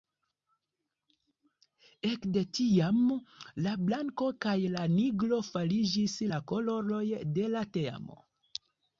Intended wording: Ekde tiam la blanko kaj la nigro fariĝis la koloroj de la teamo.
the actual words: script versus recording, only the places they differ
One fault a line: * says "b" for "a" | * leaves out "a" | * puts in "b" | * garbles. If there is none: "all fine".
all fine